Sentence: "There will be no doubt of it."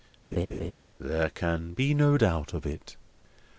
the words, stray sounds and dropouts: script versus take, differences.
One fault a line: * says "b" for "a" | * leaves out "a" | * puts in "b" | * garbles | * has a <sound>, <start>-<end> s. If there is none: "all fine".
* has a laugh, 0.3-0.7 s
* says "can" for "will"